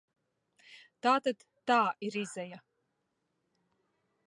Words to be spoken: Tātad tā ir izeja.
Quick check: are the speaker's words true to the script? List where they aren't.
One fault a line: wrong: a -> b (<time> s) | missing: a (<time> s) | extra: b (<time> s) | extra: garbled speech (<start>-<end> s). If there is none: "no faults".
no faults